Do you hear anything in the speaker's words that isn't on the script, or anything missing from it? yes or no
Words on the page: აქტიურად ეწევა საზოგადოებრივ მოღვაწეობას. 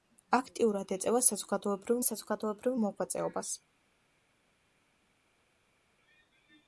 yes